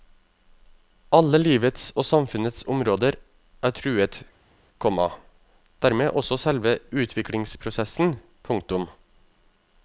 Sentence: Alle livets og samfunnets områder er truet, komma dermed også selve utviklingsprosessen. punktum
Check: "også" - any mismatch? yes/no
no